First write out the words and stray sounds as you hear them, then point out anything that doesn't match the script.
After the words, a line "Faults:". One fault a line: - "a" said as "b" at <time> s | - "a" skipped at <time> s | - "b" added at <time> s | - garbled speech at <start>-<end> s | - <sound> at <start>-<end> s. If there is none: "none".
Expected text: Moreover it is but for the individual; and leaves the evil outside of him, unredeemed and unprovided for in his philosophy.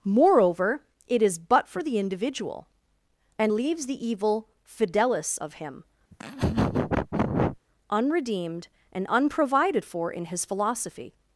Moreover it is but for the individual; and leaves the evil fidelis of him, unredeemed and unprovided for in his philosophy.
Faults:
- "outside" said as "fidelis" at 4.7 s
- laugh at 6.1-7.6 s